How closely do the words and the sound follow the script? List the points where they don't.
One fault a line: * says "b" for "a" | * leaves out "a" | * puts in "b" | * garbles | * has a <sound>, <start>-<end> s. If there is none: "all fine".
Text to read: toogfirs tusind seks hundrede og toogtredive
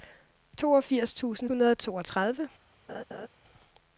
* leaves out "seks"
* has a laugh, 2.9-3.3 s